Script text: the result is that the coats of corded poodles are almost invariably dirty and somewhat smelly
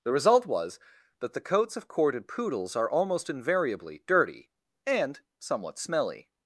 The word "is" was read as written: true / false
false